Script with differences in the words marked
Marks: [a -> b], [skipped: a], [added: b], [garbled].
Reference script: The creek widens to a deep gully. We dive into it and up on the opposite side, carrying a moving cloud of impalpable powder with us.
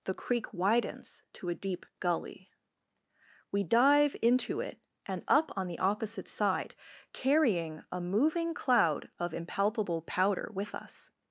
The creek widens to a deep gully. We dive into it and up on the opposite side, carrying a moving cloud of impalpable powder with us.